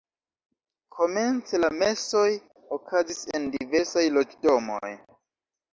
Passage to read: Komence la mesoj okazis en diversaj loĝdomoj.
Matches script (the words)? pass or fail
pass